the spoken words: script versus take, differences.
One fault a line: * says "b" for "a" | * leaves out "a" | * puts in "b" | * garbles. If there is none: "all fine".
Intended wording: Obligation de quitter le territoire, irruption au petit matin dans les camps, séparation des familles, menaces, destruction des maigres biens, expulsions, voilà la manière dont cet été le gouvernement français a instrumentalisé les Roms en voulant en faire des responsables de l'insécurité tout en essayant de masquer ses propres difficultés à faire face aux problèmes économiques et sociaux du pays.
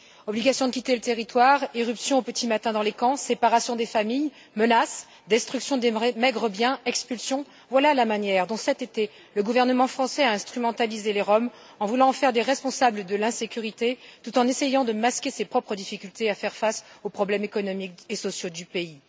all fine